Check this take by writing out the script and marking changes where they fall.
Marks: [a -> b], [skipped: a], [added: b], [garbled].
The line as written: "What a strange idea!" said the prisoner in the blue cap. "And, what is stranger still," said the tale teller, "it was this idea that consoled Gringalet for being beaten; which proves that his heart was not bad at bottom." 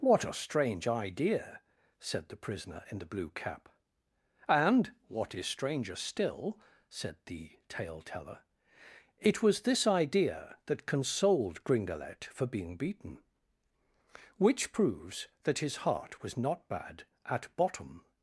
"What a strange idea!" said the prisoner in the blue cap. "And, what is stranger still," said the tale teller, "it was this idea that consoled Gringalet for being beaten; which proves that his heart was not bad at bottom."